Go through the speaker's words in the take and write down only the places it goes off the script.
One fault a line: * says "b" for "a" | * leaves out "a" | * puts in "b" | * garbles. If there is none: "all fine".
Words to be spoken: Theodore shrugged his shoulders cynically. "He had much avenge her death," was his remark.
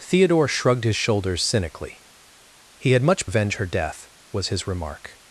all fine